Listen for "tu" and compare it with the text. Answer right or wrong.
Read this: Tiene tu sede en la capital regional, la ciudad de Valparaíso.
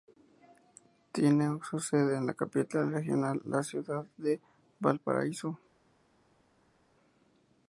wrong